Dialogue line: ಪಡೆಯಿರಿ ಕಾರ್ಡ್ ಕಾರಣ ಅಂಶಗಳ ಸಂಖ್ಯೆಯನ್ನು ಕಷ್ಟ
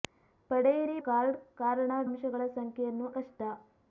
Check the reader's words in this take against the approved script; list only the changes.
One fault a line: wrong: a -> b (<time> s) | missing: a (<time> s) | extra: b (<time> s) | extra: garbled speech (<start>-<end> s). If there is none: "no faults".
no faults